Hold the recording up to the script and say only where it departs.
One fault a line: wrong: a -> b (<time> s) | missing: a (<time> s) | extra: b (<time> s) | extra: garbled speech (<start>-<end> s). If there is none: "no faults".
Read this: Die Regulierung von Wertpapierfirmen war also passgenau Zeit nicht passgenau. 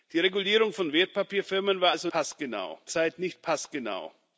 no faults